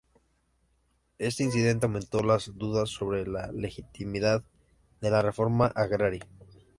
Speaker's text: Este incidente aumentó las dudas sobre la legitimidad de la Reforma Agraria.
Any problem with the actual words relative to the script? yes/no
no